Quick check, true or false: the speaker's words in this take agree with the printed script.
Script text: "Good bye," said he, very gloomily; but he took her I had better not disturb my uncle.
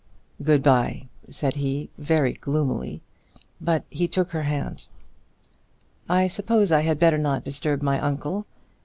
false